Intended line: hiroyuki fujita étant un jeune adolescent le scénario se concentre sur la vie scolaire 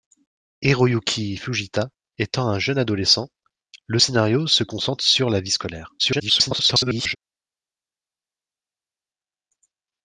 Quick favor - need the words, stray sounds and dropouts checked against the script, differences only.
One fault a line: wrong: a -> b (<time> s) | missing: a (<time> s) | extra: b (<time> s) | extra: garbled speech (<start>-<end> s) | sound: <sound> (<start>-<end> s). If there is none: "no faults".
extra: garbled speech (6.0-7.2 s)